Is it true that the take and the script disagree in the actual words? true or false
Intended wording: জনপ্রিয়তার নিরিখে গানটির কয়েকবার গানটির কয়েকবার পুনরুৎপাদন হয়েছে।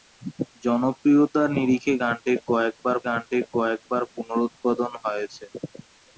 false